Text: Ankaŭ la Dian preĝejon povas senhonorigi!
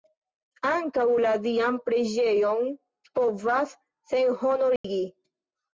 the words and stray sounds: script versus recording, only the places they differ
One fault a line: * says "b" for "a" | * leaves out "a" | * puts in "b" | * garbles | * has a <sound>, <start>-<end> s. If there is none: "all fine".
* has a dropout, 4.8-4.8 s